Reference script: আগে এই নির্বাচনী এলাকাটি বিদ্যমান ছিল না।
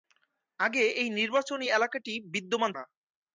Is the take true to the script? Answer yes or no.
no